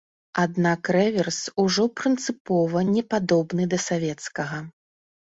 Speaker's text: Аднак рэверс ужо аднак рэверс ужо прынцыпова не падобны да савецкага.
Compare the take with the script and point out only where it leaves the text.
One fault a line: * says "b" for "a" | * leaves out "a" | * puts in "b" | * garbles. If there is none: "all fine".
* leaves out "аднак рэверс ужо"